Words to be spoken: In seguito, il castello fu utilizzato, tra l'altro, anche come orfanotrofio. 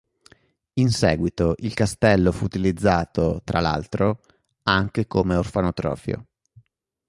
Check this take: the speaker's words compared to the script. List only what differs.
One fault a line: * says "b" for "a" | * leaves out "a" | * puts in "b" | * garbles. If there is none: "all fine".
all fine